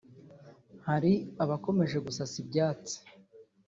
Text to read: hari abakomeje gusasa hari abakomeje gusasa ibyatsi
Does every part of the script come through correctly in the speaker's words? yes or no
no